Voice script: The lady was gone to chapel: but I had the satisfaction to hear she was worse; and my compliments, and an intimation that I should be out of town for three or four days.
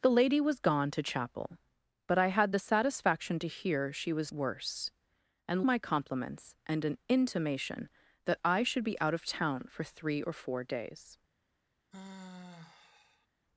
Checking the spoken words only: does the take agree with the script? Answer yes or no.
yes